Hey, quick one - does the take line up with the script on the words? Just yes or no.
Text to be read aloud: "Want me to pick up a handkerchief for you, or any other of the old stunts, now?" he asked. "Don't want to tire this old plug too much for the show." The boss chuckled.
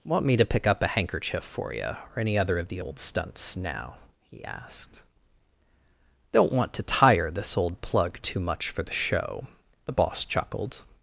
yes